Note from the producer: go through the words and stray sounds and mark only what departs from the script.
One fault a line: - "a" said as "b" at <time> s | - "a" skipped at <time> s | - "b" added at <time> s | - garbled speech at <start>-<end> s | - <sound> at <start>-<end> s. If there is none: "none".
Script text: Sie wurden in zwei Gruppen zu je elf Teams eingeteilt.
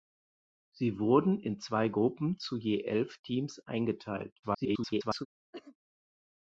- garbled speech at 4.4-5.3 s
- cough at 5.5-5.8 s